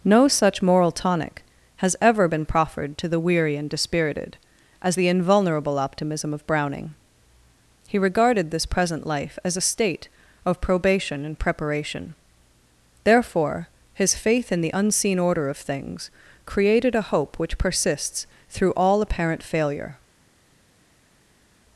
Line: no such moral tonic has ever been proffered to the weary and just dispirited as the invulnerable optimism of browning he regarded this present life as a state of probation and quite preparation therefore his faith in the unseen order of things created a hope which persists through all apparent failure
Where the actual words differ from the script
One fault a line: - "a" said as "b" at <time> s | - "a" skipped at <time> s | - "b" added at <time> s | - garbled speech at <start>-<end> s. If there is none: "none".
- "just" skipped at 3.7 s
- "quite" skipped at 11.4 s